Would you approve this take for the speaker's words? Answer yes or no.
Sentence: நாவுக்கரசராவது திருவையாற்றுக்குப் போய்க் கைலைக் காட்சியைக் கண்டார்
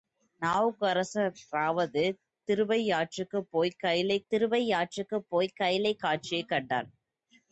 no